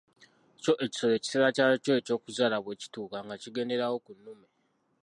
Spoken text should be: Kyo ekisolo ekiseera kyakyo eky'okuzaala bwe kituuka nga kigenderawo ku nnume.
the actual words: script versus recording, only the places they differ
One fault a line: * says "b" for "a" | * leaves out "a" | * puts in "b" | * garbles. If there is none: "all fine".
all fine